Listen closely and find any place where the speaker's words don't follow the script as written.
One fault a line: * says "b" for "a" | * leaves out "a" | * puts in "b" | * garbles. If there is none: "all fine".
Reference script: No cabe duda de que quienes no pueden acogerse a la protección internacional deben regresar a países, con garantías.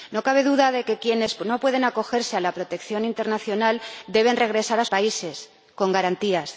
all fine